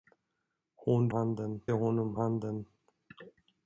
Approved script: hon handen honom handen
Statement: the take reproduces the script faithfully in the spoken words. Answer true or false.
true